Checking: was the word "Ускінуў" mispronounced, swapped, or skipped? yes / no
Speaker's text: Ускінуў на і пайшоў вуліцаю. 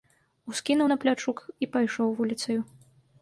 no